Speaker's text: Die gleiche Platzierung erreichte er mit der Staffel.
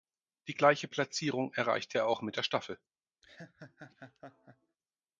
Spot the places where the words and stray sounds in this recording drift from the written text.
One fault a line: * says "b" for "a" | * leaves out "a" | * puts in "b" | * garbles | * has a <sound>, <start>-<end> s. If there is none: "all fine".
* puts in "auch"
* has a laugh, 3.2-4.8 s